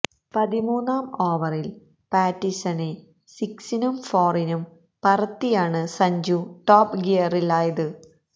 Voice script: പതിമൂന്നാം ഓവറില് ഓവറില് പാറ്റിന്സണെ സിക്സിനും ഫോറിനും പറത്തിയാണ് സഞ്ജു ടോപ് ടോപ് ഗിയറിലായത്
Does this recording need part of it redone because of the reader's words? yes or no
yes